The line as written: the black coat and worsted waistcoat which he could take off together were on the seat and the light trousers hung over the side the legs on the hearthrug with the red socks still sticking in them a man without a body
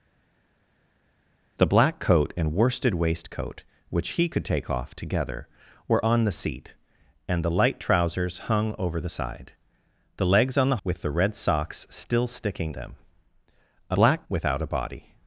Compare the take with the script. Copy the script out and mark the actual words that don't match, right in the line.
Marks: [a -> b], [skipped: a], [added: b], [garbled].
the black coat and worsted waistcoat which he could take off together were on the seat and the light trousers hung over the side the legs on the [skipped: hearthrug] with the red socks still sticking [skipped: in] them a [man -> black] without a body